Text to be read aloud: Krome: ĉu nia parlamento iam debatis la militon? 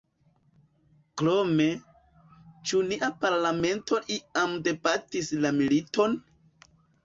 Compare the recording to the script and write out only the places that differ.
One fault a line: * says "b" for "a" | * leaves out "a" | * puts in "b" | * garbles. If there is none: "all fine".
all fine